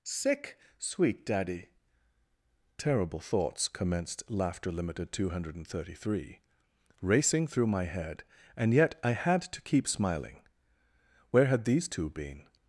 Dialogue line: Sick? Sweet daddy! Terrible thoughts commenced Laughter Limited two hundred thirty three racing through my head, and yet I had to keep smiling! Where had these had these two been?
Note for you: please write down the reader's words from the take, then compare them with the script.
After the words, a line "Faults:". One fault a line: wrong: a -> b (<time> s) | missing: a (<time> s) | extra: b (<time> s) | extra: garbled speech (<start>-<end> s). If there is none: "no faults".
Sick? Sweet daddy! Terrible thoughts commenced Laughter Limited two hundred thirty three racing through my head, and yet I had to keep smiling! Where had these two been?
Faults:
missing: had these (11.9 s)